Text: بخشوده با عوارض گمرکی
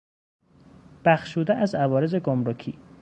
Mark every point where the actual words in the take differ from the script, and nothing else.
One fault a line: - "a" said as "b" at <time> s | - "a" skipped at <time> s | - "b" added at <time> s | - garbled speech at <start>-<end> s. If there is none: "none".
- "با" said as "از" at 1.6 s